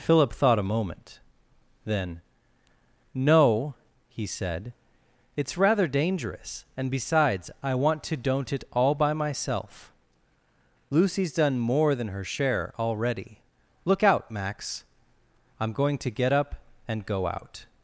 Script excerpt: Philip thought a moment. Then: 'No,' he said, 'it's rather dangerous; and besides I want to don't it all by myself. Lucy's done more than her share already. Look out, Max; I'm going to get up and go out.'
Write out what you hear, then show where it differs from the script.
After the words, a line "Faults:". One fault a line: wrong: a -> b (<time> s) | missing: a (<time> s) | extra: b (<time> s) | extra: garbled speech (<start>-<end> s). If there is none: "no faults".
Philip thought a moment. Then: 'No,' he said, 'it's rather dangerous; and besides I want to don't it all by myself. Lucy's done more than her share already. Look out, Max; I'm going to get up and go out.'
Faults:
no faults